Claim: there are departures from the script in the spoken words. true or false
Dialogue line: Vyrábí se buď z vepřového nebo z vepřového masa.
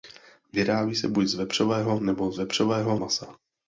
false